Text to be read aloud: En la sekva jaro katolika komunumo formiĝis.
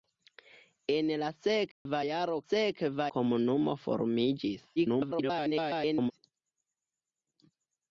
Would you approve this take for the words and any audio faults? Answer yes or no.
no